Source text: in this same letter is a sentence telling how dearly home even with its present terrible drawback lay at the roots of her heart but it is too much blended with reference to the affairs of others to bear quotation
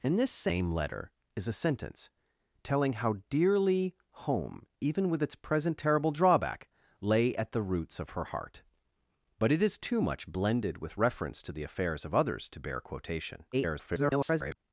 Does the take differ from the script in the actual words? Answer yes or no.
yes